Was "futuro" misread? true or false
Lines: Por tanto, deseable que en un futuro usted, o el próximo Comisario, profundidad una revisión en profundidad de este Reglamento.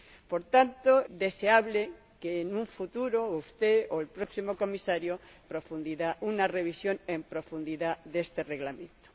false